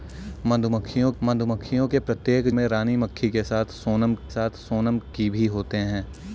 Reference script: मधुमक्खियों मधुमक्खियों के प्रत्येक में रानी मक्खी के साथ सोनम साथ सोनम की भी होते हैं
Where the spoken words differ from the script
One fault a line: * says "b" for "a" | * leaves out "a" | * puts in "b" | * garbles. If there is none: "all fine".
all fine